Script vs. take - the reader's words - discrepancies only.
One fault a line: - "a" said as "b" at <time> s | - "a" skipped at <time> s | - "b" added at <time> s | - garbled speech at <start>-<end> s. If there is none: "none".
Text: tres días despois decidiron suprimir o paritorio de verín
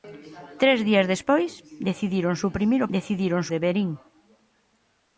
- "paritorio" said as "decidiron" at 3.0 s